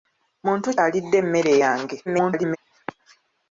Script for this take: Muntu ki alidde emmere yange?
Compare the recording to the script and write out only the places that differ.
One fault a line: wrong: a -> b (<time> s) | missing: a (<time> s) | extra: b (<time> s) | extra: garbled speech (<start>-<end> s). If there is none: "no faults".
missing: ki (0.7 s)
extra: garbled speech (2.1-2.6 s)